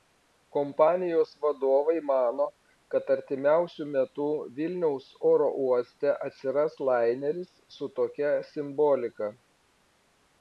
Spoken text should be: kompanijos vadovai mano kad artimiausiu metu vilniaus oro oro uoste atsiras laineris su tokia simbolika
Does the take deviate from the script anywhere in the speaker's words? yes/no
yes